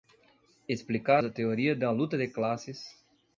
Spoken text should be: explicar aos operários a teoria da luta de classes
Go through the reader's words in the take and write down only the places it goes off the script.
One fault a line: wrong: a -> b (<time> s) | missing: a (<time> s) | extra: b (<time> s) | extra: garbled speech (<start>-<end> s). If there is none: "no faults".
missing: aos operários (1.2 s)